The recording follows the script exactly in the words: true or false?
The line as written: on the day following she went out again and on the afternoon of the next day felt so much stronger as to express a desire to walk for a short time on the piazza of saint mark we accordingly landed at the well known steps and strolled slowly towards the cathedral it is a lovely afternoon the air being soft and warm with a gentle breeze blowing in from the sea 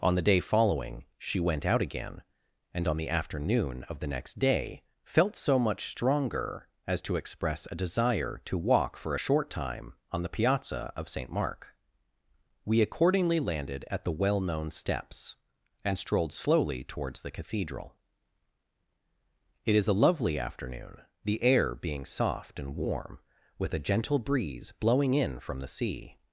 true